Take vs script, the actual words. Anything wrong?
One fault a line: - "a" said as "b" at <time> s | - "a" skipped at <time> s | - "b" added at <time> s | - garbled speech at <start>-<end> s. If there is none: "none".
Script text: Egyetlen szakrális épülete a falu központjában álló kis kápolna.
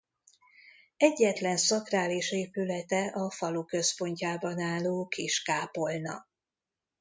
none